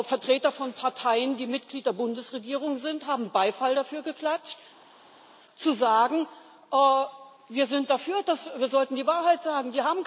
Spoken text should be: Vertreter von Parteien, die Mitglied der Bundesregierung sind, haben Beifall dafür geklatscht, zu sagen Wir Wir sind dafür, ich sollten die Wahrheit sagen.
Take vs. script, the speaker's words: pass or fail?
fail